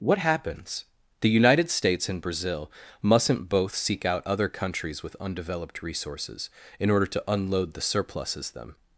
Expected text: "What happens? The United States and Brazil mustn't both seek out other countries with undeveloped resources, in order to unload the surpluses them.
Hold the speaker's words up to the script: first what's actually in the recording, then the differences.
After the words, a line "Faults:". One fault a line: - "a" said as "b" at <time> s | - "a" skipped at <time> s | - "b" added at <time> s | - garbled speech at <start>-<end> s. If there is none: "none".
"What happens? The United States and Brazil mustn't both seek out other countries with undeveloped resources, in order to unload the surpluses them.
Faults:
none